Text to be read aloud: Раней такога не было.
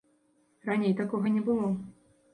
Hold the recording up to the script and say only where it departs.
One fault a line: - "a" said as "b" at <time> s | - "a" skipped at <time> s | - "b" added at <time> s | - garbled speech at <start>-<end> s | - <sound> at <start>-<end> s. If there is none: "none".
none